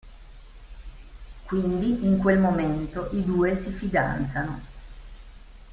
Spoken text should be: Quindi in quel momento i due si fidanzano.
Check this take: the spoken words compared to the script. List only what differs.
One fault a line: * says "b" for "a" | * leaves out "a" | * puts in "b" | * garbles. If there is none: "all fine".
all fine